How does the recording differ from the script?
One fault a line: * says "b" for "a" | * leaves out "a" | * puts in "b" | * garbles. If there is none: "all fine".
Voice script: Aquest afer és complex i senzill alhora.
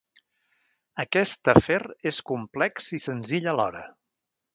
all fine